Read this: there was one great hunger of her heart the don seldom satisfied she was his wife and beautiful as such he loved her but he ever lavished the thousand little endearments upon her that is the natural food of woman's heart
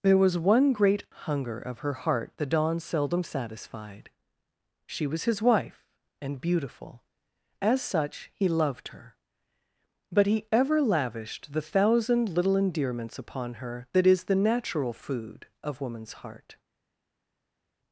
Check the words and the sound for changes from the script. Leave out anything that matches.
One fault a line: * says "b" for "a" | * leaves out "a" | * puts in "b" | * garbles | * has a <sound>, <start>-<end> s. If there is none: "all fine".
all fine